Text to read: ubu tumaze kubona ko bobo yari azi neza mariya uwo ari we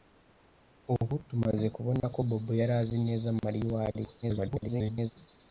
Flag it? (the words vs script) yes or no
yes